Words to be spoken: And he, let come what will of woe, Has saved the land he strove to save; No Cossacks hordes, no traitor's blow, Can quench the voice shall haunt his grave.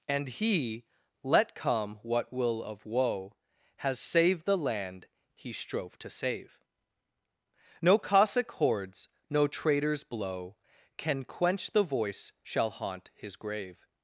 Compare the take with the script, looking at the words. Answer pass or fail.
fail